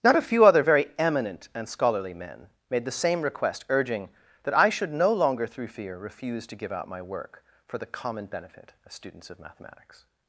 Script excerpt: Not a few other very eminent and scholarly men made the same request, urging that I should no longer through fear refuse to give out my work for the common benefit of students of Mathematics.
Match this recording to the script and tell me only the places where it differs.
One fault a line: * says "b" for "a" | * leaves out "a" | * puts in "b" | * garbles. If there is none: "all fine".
all fine